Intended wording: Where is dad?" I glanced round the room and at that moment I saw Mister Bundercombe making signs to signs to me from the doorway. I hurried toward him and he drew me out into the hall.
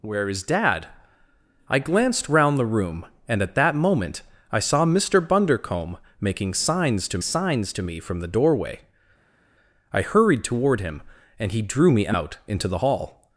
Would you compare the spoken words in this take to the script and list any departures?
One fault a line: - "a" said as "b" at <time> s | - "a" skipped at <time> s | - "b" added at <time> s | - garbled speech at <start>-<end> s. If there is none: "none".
none